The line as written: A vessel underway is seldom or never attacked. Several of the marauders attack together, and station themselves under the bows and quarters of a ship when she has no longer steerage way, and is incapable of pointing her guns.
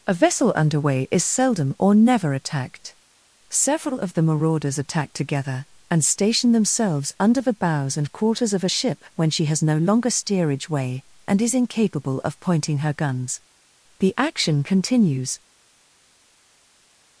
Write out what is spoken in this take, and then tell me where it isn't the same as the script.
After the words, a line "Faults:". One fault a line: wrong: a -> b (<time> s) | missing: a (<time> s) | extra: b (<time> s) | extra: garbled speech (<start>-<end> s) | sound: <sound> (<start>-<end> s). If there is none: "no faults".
A vessel underway is seldom or never attacked. Several of the marauders attack together, and station themselves under the bows and quarters of a ship when she has no longer steerage way, and is incapable of pointing her guns. The action continues
Faults:
extra: The action continues (14.0 s)